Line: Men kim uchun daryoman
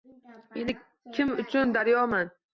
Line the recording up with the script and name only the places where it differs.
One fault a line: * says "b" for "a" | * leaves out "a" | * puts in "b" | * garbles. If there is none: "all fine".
all fine